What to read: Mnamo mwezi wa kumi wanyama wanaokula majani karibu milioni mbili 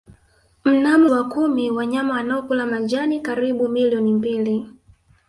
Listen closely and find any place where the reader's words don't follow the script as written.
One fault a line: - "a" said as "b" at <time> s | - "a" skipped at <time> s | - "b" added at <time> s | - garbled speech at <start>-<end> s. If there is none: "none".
- "mwezi" skipped at 1.1 s